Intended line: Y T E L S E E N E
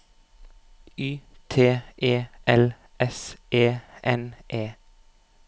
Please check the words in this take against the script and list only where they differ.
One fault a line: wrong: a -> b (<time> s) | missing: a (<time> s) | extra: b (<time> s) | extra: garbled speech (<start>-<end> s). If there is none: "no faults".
missing: E (3.8 s)